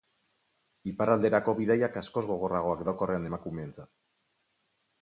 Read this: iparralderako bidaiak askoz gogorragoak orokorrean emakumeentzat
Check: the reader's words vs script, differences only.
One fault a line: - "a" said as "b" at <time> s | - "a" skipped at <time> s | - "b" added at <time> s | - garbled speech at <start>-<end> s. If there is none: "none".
none